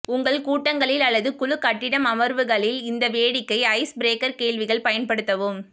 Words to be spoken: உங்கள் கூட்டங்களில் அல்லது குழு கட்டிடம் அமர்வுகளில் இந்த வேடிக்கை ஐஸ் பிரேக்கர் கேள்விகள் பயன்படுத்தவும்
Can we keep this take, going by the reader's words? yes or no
yes